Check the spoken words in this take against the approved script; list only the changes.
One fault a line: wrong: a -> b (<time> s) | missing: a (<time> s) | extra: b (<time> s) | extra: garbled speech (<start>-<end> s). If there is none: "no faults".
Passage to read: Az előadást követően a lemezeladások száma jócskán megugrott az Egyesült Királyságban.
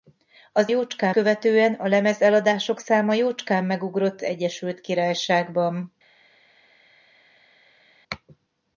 wrong: előadást -> jócskán (0.7 s)
missing: az (4.2 s)